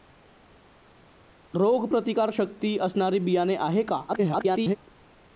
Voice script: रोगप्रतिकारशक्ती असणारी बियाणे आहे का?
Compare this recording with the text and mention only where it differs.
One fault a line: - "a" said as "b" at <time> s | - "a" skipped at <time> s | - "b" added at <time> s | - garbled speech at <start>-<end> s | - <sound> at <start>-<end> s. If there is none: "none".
- garbled speech at 4.1-4.8 s